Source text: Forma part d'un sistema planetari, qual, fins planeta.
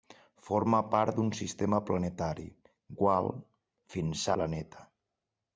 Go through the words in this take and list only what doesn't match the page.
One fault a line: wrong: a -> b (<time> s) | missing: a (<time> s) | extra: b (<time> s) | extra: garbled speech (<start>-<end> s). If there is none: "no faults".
no faults